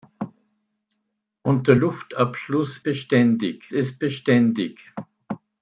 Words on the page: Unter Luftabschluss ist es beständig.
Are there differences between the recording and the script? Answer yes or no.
yes